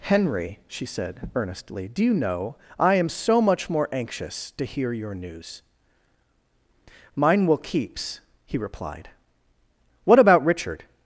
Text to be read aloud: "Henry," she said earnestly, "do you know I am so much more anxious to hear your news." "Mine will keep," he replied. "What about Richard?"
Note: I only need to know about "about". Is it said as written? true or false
true